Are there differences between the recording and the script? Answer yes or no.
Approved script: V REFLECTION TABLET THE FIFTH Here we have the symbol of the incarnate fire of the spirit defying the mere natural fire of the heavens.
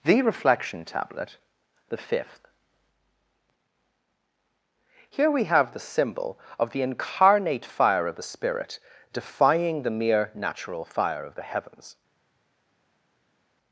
yes